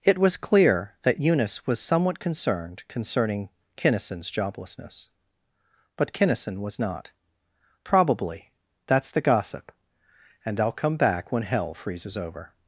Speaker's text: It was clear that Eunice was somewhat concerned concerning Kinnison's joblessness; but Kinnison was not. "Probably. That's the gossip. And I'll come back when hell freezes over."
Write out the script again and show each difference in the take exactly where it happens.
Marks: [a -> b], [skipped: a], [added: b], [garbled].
It was clear that Eunice was somewhat concerned concerning Kinnison's joblessness; but Kinnison was not. "Probably. That's the gossip. And I'll come back when hell freezes over."